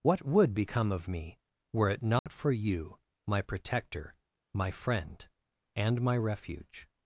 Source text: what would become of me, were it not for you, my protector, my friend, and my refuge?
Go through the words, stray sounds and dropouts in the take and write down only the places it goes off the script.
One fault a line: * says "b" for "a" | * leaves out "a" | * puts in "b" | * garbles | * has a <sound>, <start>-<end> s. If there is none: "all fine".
* has a dropout, 2.2-2.3 s